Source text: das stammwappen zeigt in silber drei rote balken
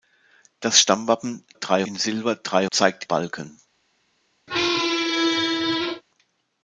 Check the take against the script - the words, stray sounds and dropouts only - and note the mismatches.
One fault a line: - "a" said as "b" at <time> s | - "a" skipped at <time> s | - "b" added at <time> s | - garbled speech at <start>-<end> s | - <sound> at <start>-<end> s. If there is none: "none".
- "zeigt" said as "drei" at 1.5 s
- "rote" said as "zeigt" at 2.7 s
- squeak at 4.5-6.0 s